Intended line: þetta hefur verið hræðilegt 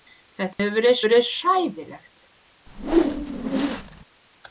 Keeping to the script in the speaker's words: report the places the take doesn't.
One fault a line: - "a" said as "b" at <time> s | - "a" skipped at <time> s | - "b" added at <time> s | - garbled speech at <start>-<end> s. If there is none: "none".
- "verið" added at 1.0 s